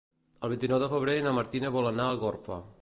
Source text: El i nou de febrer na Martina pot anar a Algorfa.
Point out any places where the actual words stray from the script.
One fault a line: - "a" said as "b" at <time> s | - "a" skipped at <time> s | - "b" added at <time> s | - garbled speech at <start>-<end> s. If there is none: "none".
- "vint" added at 0.5 s
- "pot" said as "vol" at 1.8 s